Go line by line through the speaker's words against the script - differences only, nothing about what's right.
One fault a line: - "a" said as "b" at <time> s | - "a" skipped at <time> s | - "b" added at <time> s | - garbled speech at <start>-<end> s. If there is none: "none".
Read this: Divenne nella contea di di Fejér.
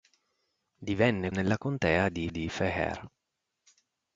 none